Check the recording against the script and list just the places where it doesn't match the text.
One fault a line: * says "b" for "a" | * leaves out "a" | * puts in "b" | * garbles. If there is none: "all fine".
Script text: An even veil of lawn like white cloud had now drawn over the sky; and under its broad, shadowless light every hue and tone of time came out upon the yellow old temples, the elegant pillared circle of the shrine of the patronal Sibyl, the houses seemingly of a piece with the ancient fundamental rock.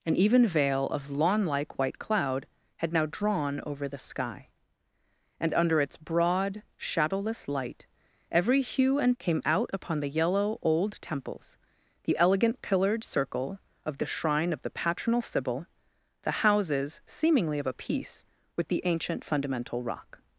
* leaves out "tone of time"